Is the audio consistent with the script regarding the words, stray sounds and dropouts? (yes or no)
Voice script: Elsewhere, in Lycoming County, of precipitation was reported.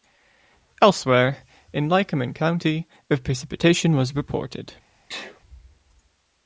no